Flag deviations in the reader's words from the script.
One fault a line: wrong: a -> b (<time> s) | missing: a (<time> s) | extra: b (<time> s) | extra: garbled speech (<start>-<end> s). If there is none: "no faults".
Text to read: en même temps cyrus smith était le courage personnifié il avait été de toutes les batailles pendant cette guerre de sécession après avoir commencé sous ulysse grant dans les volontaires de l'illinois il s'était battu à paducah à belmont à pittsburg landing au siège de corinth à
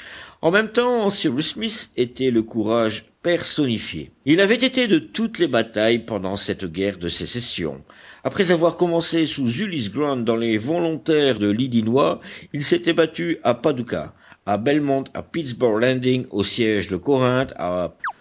no faults